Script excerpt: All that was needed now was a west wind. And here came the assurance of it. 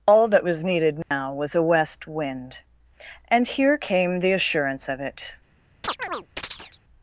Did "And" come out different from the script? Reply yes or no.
no